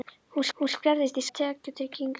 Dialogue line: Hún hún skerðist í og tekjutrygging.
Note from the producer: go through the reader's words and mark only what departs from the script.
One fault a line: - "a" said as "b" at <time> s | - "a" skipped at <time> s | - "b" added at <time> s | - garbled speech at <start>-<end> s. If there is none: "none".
none